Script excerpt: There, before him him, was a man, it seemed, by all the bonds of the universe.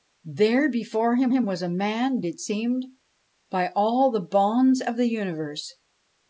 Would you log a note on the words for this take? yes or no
no